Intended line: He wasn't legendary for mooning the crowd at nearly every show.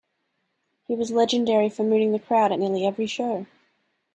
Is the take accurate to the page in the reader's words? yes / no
no